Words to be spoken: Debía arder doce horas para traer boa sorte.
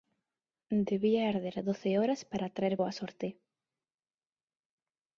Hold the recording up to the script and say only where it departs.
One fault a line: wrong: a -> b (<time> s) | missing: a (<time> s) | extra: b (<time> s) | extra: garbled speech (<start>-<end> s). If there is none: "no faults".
no faults